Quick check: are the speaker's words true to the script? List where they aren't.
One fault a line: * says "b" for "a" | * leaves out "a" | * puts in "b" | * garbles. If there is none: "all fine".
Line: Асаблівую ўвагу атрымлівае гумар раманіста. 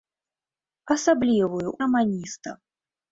* leaves out "ўвагу атрымлівае гумар"